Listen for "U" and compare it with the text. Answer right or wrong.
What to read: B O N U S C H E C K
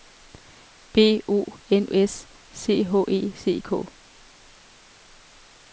wrong